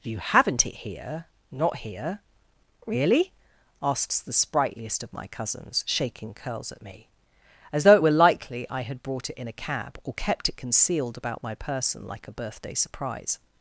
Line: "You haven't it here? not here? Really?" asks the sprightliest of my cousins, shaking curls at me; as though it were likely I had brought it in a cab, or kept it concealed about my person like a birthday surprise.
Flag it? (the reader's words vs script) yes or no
no